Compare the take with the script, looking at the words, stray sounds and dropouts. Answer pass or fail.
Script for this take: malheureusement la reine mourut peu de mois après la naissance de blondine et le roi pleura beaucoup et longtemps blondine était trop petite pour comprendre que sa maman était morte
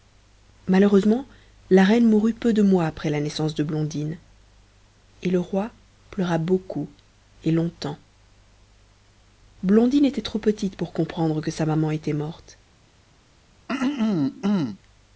fail